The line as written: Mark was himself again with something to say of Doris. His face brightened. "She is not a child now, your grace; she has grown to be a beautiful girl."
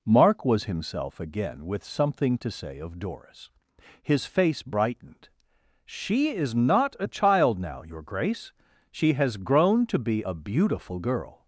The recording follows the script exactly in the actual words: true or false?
true